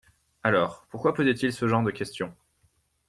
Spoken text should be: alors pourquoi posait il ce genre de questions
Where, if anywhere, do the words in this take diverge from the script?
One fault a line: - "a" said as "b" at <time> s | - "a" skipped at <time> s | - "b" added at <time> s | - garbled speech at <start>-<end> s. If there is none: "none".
none